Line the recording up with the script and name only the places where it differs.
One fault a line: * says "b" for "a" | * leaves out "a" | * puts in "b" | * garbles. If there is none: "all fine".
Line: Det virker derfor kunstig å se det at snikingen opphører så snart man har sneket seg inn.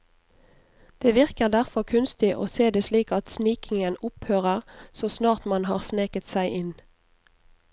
* puts in "slik"